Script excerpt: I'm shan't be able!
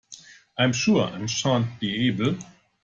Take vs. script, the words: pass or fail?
fail